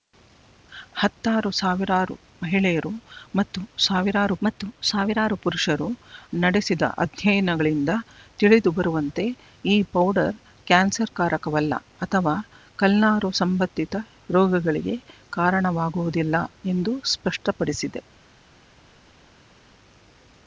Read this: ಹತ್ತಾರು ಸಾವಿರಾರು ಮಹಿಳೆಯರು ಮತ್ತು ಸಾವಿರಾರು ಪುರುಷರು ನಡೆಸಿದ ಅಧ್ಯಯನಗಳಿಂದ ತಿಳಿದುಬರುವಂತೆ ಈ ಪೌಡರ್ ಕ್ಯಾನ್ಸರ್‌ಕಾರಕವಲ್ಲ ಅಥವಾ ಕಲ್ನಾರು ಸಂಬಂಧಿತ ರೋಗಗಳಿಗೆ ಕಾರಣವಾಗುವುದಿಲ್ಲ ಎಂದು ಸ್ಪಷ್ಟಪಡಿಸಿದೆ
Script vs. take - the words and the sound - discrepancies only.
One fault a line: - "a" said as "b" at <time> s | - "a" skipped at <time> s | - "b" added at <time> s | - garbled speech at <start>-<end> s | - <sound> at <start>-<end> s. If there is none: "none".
- "ಮತ್ತು ಸಾವಿರಾರು" added at 4.4 s